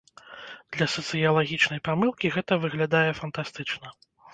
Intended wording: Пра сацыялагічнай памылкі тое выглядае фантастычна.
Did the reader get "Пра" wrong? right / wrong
wrong